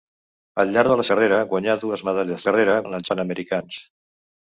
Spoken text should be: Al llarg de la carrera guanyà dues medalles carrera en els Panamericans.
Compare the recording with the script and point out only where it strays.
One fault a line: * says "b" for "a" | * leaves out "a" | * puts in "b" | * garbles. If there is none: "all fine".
all fine